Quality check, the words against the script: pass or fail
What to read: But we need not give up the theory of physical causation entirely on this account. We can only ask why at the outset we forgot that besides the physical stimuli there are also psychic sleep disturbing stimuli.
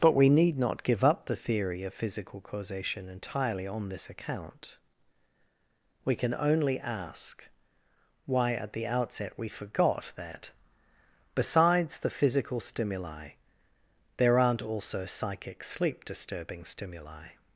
fail